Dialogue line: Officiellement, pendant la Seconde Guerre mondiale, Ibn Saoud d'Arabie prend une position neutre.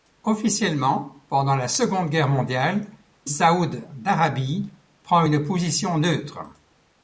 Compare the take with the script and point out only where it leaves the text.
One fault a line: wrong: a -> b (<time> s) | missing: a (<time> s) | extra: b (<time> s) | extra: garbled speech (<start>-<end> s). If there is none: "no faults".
missing: Ibn (2.9 s)